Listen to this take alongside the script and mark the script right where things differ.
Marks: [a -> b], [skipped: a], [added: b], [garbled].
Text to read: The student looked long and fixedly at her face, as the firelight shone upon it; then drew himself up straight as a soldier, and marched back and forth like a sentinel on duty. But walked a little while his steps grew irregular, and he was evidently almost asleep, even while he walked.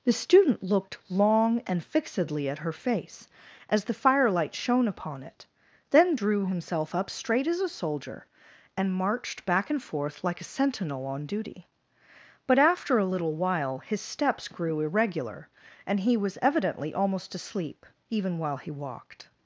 The student looked long and fixedly at her face, as the firelight shone upon it; then drew himself up straight as a soldier, and marched back and forth like a sentinel on duty. But [walked -> after] a little while his steps grew irregular, and he was evidently almost asleep, even while he walked.